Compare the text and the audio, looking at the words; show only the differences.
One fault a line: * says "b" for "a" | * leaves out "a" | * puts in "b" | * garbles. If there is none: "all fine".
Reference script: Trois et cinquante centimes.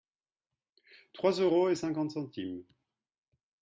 * puts in "euros"